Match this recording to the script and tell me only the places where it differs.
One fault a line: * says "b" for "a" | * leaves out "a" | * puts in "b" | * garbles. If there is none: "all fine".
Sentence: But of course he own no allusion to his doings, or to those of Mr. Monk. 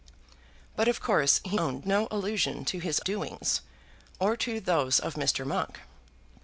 all fine